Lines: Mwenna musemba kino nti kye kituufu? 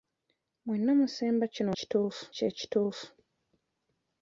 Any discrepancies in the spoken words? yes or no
yes